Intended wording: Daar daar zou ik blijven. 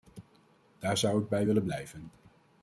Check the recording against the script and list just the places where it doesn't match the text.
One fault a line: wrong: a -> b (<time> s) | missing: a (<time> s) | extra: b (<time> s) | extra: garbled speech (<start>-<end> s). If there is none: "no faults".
missing: daar (1.0 s)
extra: bij willen (1.3 s)